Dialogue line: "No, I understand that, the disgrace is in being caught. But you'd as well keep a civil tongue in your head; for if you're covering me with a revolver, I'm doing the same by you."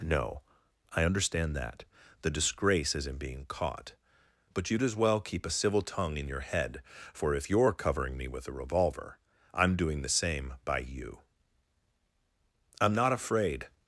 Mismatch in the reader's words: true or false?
true